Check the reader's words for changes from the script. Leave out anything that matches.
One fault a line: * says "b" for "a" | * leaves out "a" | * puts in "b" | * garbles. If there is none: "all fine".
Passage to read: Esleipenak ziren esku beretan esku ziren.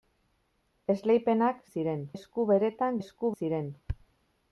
all fine